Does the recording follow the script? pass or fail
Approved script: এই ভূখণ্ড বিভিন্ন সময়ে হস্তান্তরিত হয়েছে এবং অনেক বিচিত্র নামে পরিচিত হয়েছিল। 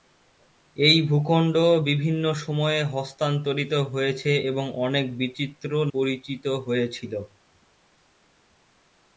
fail